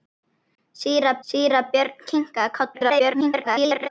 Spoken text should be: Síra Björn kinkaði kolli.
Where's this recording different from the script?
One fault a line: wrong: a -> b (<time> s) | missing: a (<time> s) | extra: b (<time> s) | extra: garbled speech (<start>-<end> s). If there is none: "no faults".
extra: síra (1.3 s)
extra: garbled speech (2.7-3.9 s)